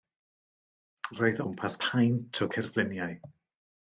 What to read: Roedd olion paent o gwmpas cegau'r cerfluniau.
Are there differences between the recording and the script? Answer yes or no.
yes